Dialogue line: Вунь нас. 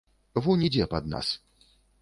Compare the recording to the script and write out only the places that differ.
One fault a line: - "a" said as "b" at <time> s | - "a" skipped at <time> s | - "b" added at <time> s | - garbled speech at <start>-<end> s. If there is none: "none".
- "ідзе пад" added at 0.7 s